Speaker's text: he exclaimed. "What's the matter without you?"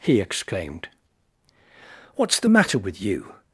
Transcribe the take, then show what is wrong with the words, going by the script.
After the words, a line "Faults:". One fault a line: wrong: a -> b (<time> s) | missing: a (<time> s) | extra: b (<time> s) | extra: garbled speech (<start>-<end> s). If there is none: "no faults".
he exclaimed. "What's the matter with you?"
Faults:
wrong: without -> with (2.8 s)